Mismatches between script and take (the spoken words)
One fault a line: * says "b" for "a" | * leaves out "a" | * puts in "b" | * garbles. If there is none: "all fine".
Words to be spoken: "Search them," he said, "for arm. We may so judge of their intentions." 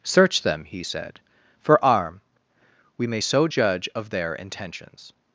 all fine